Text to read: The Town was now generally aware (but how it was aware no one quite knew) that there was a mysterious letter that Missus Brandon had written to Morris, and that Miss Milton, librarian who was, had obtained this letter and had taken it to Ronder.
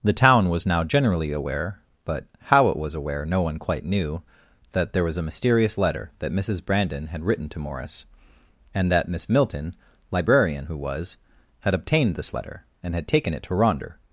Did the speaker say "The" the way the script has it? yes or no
yes